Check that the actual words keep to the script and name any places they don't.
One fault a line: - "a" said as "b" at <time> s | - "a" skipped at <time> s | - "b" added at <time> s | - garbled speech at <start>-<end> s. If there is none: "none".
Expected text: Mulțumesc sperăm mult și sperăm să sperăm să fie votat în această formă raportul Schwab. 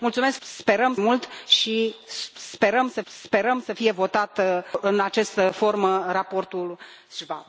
none